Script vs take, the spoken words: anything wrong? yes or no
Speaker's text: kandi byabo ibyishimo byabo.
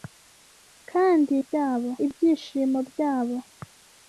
no